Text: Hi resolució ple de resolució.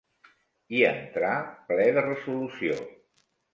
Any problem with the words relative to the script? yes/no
yes